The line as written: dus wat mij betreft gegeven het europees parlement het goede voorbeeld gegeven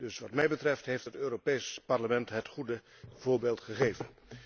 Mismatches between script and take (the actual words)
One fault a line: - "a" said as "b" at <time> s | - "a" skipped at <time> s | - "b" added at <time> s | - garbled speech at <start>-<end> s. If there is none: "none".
- "gegeven" said as "heeft" at 0.9 s